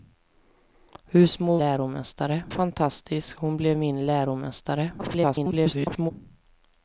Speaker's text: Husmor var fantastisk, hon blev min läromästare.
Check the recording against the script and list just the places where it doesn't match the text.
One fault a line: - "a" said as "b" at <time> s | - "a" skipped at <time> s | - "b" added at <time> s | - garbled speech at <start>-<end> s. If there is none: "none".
- "var" said as "läromästare" at 1.6 s
- garbled speech at 5.0-6.1 s